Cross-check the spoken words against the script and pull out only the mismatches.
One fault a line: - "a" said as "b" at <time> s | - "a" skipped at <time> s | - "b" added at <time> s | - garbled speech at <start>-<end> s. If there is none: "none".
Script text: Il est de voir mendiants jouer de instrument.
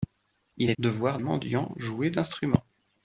none